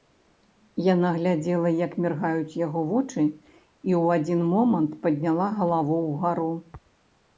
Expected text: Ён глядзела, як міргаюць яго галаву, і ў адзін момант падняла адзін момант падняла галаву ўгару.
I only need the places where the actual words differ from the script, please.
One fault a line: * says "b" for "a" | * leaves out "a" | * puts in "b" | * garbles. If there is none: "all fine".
* says "Яна" for "Ён"
* says "вочы" for "галаву"
* leaves out "адзін момант падняла"